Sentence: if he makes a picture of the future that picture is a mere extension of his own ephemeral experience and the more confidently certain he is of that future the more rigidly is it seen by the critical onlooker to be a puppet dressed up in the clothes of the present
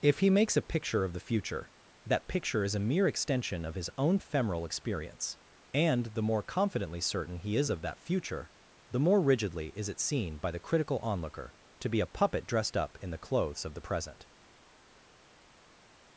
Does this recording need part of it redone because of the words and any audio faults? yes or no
no